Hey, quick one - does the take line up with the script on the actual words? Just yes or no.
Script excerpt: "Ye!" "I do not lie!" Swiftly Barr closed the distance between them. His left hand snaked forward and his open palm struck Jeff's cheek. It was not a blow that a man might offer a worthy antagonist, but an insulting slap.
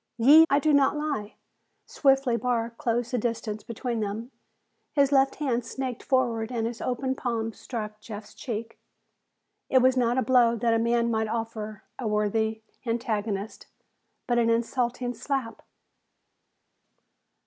yes